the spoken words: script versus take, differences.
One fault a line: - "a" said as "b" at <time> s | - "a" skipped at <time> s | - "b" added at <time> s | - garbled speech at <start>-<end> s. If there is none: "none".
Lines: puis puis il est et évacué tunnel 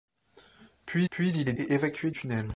none